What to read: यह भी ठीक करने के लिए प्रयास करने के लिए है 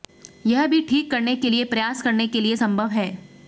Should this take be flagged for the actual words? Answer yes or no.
yes